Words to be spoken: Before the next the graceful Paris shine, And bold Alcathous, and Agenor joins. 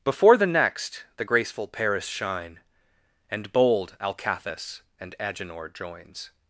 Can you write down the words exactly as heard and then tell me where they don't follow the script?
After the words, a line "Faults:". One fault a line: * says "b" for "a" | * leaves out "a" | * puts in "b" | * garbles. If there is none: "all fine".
Before the next the graceful Paris shine, And bold Alcathous, and Agenor joins.
Faults:
all fine